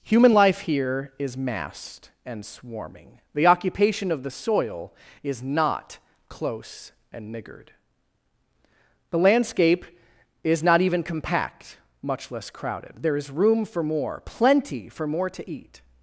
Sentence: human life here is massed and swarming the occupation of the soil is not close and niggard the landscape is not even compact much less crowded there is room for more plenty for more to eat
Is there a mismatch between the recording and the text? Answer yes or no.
no